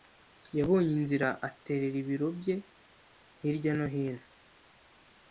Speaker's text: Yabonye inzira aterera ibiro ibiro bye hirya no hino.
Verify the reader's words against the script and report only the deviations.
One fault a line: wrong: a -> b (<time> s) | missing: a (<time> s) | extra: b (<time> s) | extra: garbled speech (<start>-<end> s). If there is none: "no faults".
missing: ibiro (2.3 s)